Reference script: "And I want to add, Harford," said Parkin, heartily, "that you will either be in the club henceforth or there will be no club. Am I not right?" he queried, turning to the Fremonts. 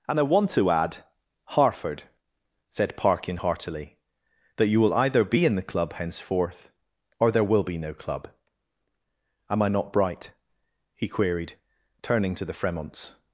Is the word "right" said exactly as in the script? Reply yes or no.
no